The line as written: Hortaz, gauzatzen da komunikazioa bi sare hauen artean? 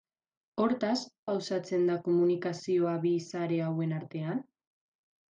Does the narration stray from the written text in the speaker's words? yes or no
no